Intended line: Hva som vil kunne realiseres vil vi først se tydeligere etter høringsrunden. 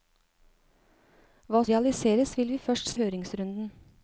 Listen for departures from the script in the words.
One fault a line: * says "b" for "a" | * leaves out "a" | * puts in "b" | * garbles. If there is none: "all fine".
* leaves out "som vil kunne"
* leaves out "se tydeligere etter"